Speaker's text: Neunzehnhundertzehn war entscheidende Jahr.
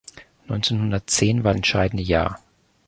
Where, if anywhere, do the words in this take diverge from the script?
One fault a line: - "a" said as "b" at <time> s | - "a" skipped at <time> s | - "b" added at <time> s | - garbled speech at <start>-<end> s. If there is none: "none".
none